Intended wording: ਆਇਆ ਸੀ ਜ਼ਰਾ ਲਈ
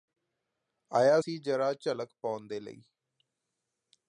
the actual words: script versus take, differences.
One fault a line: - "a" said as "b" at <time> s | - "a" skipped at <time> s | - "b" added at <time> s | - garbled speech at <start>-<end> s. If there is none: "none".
- "ਝਲਕ ਪਾਉਣ ਦੇ" added at 1.7 s